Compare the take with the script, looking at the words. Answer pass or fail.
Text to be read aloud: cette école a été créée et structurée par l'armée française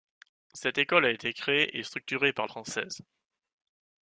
fail